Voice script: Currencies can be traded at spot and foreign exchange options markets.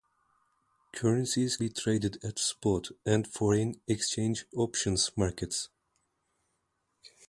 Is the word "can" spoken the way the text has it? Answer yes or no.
no